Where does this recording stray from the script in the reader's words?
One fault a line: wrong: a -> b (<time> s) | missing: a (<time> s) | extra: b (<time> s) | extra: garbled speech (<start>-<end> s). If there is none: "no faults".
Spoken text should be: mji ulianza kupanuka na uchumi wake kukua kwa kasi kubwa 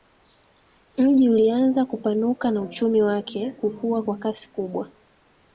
no faults